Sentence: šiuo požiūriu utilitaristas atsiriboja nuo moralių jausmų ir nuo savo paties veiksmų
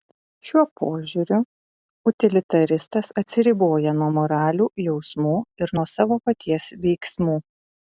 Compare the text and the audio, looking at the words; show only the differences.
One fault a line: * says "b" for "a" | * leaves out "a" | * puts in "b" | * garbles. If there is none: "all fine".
all fine